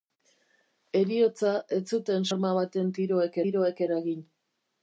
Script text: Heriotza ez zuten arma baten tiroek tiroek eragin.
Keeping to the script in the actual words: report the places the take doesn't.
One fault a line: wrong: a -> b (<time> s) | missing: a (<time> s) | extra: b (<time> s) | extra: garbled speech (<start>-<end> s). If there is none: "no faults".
no faults